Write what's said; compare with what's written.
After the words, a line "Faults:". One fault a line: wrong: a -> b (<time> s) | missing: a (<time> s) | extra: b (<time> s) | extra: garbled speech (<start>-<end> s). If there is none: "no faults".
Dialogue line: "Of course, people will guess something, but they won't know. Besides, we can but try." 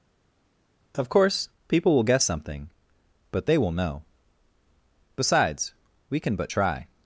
"Of course, people will guess something, but they will know. Besides, we can but try."
Faults:
wrong: won't -> will (3.6 s)